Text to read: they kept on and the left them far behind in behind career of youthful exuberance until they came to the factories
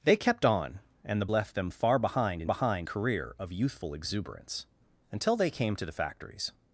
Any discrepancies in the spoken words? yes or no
no